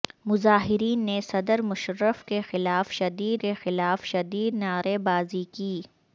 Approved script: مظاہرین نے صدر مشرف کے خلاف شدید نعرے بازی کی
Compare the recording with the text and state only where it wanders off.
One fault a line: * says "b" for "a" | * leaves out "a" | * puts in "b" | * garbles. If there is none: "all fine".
* puts in "کے خلاف شدید"